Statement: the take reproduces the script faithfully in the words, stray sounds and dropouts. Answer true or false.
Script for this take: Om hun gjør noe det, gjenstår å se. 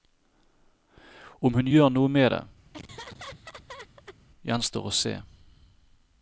false